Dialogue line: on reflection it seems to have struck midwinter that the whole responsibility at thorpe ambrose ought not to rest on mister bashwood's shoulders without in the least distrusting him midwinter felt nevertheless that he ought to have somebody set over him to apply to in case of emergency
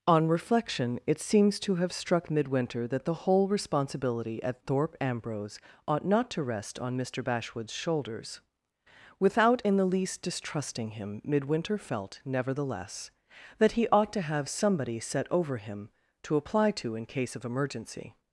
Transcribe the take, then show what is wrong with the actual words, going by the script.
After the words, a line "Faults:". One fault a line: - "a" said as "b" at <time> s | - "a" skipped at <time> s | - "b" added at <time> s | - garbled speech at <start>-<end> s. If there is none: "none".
on reflection it seems to have struck midwinter that the whole responsibility at thorpe ambrose ought not to rest on mister bashwood's shoulders without in the least distrusting him midwinter felt nevertheless that he ought to have somebody set over him to apply to in case of emergency
Faults:
none